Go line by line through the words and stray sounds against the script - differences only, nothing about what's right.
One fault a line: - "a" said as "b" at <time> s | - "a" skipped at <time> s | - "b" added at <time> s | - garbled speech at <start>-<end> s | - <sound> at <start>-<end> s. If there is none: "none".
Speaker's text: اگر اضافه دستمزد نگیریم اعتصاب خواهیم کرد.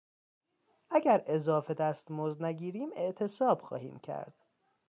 none